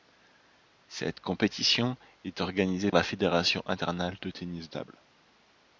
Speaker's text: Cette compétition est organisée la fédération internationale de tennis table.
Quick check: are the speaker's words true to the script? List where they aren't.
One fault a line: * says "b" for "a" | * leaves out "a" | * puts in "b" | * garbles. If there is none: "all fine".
all fine